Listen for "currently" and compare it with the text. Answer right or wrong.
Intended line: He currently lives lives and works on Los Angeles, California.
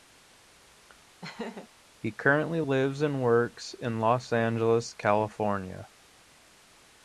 right